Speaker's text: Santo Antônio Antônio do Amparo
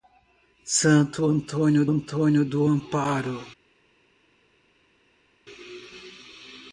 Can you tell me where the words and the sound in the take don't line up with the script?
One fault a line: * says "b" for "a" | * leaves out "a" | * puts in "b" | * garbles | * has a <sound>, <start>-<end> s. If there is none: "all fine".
all fine